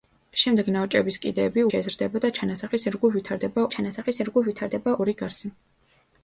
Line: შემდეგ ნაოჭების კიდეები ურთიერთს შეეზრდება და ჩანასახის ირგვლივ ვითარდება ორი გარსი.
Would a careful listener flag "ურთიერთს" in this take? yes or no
yes